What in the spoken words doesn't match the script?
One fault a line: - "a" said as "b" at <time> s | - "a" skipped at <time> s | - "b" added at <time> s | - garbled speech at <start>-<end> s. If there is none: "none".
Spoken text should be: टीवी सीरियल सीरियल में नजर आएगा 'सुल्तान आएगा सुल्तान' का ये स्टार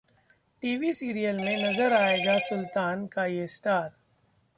- "सीरियल" skipped at 1.4 s
- "आएगा सुल्तान" skipped at 3.0 s